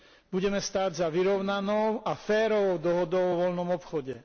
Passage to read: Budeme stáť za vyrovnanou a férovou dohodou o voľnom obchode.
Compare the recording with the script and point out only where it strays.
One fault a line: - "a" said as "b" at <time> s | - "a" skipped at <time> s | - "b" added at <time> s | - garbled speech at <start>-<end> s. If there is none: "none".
none